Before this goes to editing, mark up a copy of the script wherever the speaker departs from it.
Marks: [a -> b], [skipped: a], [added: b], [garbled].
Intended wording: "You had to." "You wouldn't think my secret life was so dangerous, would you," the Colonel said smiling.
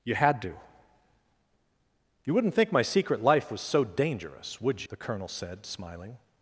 "You had to." "You wouldn't think my secret life was so dangerous, would [skipped: you,"] the Colonel said smiling.